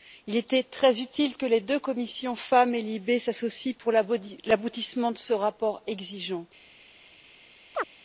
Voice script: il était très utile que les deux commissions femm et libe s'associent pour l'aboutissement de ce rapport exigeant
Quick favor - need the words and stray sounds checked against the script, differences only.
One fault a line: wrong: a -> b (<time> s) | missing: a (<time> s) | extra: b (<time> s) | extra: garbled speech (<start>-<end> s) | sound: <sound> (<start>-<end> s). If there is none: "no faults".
sound: chirp (7.7-7.9 s)